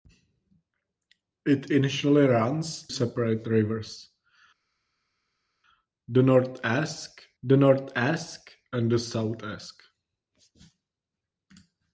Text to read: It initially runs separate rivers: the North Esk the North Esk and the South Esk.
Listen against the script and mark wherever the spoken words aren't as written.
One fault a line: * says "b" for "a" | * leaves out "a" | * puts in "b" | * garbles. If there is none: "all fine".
all fine